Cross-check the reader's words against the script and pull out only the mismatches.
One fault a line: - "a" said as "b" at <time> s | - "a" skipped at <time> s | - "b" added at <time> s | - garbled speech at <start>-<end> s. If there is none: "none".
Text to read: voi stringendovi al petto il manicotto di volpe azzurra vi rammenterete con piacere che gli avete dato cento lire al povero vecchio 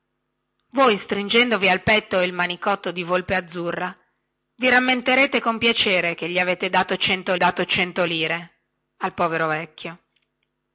- "dato cento" added at 7.4 s